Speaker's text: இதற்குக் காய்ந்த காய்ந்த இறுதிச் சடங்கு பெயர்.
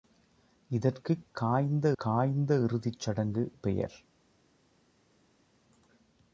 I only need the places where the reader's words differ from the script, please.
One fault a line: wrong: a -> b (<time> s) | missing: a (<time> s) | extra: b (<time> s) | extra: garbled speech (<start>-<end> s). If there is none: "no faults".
no faults